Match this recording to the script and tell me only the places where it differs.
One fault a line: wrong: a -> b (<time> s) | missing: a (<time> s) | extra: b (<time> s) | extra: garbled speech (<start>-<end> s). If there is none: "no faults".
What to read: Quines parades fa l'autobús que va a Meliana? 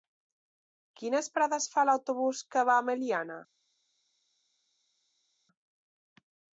no faults